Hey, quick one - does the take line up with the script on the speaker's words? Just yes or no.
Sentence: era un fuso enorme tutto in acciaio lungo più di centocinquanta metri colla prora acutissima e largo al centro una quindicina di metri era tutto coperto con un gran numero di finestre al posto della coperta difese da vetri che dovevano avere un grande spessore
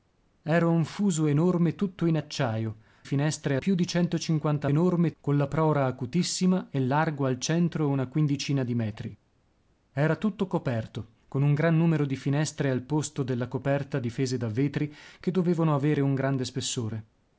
no